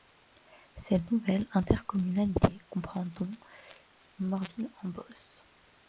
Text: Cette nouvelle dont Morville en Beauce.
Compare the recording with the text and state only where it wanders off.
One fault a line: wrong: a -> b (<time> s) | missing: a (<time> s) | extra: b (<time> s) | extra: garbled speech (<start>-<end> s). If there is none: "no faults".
extra: intercommunalité comprend (1.5 s)